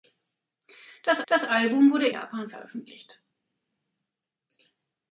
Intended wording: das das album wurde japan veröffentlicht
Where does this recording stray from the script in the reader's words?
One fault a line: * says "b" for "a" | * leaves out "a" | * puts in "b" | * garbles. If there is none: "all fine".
all fine